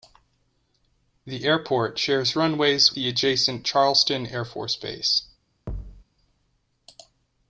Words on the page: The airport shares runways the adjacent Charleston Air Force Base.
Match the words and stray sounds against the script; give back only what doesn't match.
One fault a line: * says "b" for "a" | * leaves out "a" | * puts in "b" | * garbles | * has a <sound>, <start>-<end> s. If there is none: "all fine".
* has a thud, 5.7-6.0 s